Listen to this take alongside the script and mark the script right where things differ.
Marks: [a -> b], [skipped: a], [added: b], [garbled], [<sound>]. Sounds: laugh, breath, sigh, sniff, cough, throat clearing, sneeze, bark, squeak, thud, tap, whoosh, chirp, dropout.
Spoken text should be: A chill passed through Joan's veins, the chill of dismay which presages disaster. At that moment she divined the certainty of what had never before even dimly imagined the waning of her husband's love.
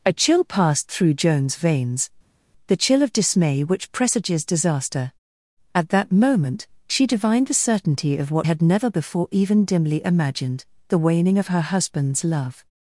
A chill passed through Joan's veins, the chill of dismay which presages disaster. At that moment she divined the certainty of what had never before even dimly imagined the waning of her husband's love.